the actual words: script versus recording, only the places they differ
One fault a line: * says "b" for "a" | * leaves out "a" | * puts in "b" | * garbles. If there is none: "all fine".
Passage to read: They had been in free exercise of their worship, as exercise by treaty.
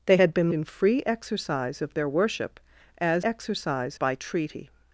all fine